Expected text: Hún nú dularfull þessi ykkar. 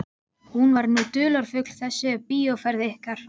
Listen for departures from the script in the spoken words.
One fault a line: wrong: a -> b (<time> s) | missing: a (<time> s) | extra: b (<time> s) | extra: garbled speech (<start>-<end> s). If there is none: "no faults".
extra: var (0.8 s)
extra: bíóferð (2.3 s)